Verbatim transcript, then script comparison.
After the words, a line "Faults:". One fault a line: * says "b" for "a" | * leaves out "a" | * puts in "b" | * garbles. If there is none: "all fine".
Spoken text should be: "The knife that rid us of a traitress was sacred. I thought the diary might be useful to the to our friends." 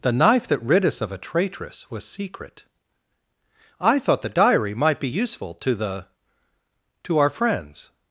"The knife that rid us of a traitress was secret. I thought the diary might be useful to the to our friends."
Faults:
* says "secret" for "sacred"